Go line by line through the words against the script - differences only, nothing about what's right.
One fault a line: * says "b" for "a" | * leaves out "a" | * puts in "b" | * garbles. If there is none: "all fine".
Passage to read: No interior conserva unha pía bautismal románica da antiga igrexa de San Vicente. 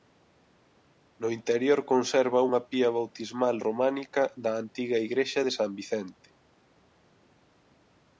all fine